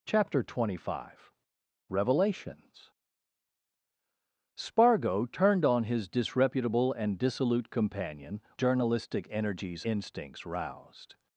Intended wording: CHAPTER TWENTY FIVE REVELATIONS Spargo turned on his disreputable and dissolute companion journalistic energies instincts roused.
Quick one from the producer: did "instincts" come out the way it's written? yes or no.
yes